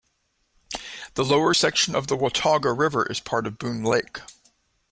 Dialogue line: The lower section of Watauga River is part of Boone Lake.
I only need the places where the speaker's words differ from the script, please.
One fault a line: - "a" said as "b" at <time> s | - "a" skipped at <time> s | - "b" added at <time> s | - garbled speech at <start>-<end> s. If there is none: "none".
- "the" added at 2.1 s